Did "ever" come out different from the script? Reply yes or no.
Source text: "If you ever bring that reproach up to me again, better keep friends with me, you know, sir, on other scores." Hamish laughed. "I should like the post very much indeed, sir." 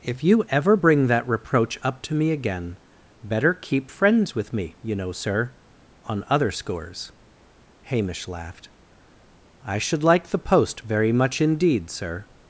no